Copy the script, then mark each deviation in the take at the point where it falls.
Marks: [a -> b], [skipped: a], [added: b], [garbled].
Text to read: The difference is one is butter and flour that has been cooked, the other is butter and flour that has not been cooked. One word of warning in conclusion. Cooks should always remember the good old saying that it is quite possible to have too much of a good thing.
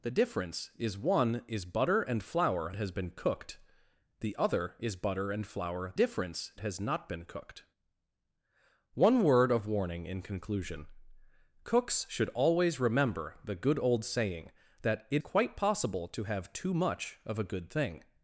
The difference is one is butter and flour [skipped: that] has been cooked, the other is butter and flour [that -> difference] has not been cooked. One word of warning in conclusion. Cooks should always remember the good old saying that it [skipped: is] quite possible to have too much of a good thing.